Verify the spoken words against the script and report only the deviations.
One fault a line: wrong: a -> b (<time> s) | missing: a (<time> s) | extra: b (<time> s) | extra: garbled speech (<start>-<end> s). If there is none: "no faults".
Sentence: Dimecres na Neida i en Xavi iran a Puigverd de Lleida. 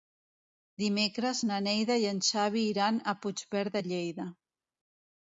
no faults